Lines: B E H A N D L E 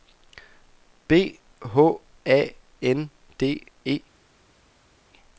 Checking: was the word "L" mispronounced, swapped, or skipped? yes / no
yes